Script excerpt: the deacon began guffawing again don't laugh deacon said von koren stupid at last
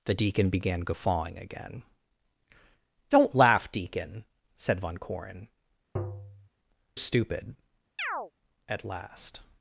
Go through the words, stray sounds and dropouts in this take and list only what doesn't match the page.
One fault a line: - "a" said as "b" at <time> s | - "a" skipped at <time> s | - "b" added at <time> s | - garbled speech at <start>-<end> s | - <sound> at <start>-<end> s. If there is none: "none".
- tap at 6.0-6.5 s
- chirp at 8.0-8.3 s